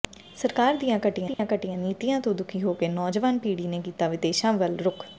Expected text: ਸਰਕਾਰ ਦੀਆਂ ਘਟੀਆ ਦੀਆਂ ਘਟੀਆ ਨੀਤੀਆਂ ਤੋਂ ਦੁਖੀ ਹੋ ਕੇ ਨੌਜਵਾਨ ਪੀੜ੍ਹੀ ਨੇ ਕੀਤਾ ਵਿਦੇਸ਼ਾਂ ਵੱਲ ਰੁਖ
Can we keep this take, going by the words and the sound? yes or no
no